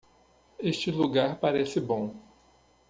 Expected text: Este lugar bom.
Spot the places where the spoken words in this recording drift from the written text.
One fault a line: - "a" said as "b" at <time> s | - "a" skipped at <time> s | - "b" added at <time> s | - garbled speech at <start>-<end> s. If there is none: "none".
- "parece" added at 1.4 s